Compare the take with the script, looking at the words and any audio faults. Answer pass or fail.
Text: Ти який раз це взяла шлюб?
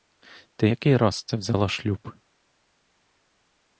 pass